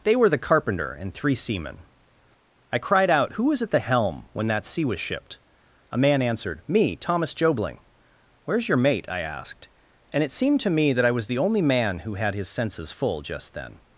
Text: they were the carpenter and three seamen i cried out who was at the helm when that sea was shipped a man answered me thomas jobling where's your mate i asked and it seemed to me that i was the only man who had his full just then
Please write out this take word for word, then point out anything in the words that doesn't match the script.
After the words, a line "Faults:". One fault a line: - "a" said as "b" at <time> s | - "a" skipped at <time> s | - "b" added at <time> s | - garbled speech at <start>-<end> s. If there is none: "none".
they were the carpenter and three seamen i cried out who was at the helm when that sea was shipped a man answered me thomas jobling where's your mate i asked and it seemed to me that i was the only man who had his senses full just then
Faults:
- "senses" added at 12.5 s